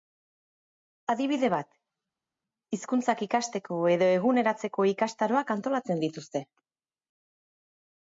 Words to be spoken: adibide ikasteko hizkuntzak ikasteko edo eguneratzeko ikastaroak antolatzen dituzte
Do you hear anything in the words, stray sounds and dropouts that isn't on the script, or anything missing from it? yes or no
yes